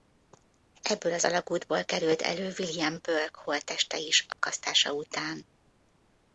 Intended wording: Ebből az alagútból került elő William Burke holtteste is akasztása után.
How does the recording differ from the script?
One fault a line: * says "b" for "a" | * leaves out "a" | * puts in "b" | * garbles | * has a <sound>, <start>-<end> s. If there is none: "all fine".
* has a dropout, 4.3-4.4 s